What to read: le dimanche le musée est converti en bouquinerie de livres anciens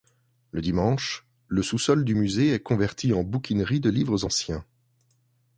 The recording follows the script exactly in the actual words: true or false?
false